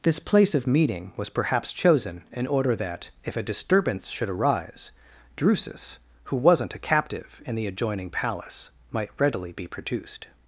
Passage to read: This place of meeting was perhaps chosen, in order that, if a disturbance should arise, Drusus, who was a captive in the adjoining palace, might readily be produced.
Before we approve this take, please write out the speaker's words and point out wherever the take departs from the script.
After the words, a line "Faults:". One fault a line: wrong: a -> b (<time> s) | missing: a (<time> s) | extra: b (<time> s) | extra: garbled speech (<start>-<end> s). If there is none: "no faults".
This place of meeting was perhaps chosen, in order that, if a disturbance should arise, Drusus, who wasn't a captive in the adjoining palace, might readily be produced.
Faults:
wrong: was -> wasn't (6.4 s)